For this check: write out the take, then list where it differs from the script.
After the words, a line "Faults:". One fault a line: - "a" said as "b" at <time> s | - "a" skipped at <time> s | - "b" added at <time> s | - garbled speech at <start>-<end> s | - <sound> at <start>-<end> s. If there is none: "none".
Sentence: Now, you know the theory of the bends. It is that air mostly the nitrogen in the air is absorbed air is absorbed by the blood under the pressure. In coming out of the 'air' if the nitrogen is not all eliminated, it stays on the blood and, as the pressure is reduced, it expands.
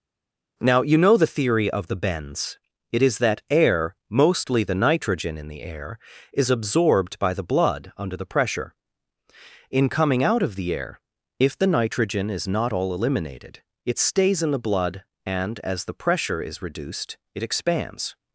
Now, you know the theory of the bends. It is that air mostly the nitrogen in the air is absorbed by the blood under the pressure. In coming out of the 'air' if the nitrogen is not all eliminated, it stays in the blood and, as the pressure is reduced, it expands.
Faults:
- "air is absorbed" skipped at 7.2 s
- "on" said as "in" at 14.4 s